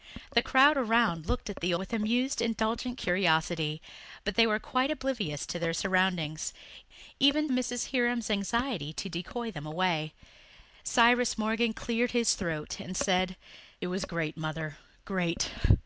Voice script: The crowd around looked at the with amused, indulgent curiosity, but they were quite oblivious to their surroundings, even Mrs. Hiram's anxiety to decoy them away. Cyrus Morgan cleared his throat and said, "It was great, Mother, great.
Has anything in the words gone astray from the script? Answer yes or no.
no